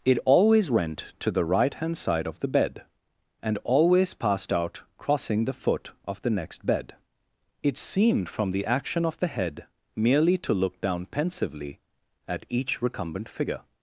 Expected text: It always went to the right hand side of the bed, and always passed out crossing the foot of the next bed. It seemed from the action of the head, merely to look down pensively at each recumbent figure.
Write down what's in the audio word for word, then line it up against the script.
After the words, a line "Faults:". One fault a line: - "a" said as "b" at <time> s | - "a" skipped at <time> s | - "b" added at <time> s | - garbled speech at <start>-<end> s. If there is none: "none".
It always went to the right hand side of the bed, and always passed out crossing the foot of the next bed. It seemed from the action of the head, merely to look down pensively at each recumbent figure.
Faults:
none